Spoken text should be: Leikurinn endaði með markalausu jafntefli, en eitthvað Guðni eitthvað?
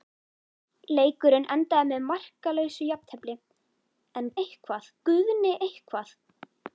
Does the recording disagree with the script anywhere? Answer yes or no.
no